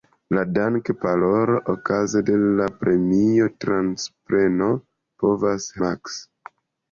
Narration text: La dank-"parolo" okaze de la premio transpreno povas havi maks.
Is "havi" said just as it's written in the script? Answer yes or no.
no